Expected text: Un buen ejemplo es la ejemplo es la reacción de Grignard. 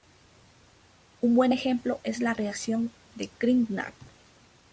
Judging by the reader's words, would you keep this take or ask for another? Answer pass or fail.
fail